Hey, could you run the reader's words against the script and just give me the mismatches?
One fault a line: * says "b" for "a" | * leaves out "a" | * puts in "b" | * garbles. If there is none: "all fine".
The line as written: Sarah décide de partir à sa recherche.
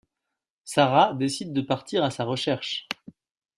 all fine